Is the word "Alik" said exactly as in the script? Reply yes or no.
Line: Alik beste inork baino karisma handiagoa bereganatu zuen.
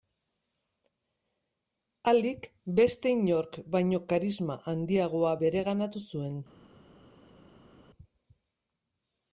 yes